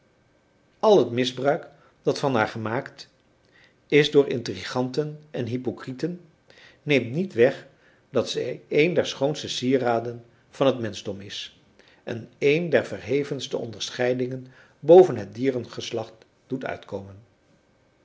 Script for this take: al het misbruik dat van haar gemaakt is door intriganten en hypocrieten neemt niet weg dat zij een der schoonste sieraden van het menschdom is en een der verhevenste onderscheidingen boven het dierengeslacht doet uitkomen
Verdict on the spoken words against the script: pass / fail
pass